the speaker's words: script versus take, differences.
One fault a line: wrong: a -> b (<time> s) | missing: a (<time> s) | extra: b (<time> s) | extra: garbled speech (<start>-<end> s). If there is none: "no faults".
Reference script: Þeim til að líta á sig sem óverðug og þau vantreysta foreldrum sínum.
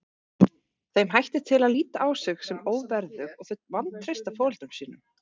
extra: hættir (1.1 s)